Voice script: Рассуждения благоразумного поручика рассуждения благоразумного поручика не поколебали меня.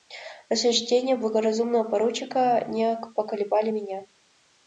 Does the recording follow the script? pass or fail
fail